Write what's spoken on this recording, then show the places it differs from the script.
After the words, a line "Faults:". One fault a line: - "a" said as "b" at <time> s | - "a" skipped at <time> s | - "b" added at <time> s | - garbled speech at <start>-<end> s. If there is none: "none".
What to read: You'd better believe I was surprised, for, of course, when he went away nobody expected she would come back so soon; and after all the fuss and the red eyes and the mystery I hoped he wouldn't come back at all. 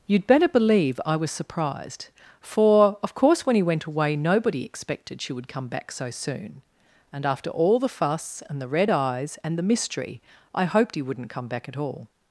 You'd better believe I was surprised, for, of course, when he went away nobody expected she would come back so soon; and after all the fuss and the red eyes and the mystery I hoped he wouldn't come back at all.
Faults:
none